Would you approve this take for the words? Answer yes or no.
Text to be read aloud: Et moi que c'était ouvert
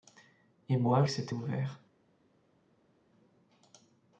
yes